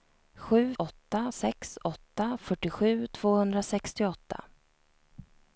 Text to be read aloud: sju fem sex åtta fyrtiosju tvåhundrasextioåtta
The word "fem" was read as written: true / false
false